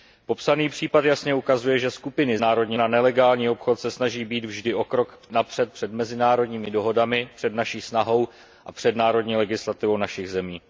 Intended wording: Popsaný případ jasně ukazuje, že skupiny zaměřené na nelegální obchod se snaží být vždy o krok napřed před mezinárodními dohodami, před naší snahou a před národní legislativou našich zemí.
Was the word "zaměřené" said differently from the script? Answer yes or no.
yes